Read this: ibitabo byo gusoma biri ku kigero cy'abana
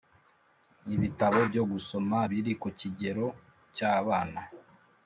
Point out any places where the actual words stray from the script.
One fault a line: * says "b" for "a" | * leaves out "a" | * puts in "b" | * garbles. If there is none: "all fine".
all fine